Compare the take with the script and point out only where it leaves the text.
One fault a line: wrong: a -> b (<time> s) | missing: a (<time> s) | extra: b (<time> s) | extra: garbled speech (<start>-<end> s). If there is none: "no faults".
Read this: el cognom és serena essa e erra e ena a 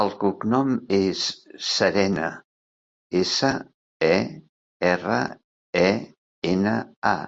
no faults